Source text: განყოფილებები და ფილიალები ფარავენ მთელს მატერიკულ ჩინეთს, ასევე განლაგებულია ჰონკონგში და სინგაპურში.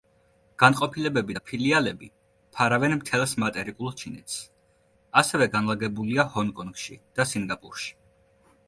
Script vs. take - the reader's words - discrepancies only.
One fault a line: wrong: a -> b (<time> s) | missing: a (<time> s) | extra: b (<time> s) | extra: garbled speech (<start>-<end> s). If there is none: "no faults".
no faults